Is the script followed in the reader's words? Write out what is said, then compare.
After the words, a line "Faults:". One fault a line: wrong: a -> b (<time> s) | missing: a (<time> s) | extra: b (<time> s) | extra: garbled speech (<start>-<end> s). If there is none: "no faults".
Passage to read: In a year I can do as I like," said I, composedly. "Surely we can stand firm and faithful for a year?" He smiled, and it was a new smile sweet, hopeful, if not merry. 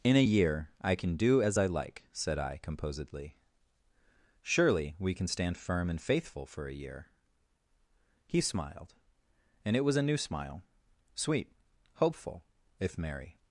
In a year I can do as I like," said I, composedly. "Surely we can stand firm and faithful for a year?" He smiled, and it was a new smile sweet, hopeful, if merry.
Faults:
missing: not (13.0 s)